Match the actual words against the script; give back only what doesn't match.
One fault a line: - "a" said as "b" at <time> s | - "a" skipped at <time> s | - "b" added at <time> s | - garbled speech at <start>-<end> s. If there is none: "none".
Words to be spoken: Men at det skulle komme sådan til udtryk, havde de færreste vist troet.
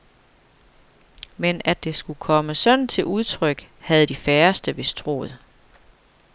none